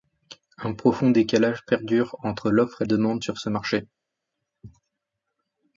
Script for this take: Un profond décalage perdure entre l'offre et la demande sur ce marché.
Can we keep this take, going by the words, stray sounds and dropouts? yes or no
no